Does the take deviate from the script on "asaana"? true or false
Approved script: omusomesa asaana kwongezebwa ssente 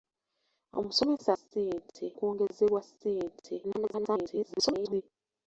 true